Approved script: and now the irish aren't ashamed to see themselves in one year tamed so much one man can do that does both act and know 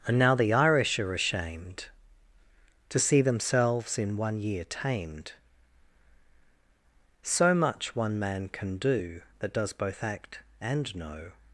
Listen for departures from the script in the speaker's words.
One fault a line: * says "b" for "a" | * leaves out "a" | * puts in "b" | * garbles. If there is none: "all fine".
* says "are" for "aren't"